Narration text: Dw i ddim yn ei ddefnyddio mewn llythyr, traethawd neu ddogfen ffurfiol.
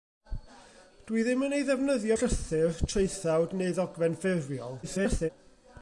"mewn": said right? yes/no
no